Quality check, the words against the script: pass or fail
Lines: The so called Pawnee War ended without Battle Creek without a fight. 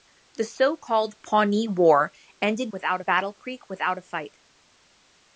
pass